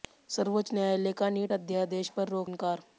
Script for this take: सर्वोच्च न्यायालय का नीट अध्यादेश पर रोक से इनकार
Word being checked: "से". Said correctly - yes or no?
no